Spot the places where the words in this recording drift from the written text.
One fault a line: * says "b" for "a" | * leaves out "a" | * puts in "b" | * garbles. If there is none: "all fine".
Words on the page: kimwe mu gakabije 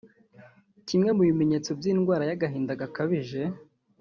* puts in "bimenyetso by'indwara y'agahinda"